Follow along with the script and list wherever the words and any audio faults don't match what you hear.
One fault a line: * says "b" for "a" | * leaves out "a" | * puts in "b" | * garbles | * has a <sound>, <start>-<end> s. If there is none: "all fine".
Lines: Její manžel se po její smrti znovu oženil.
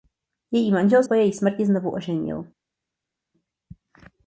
* leaves out "se"